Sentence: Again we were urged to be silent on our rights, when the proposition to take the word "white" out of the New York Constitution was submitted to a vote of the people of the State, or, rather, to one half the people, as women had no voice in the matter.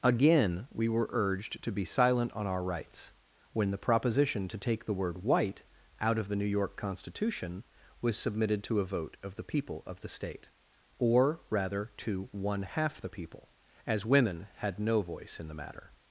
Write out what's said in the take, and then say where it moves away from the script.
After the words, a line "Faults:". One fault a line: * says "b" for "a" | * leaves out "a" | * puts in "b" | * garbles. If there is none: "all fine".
Again we were urged to be silent on our rights, when the proposition to take the word "white" out of the New York Constitution was submitted to a vote of the people of the State, or, rather, to one half the people, as women had no voice in the matter.
Faults:
all fine